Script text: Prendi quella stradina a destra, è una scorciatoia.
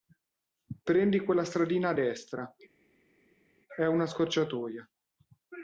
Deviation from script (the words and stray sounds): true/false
false